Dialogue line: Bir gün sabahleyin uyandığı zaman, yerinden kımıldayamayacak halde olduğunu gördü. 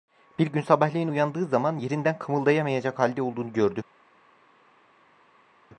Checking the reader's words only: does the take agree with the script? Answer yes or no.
yes